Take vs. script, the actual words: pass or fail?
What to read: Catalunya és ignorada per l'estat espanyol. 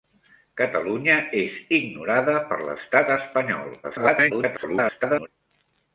fail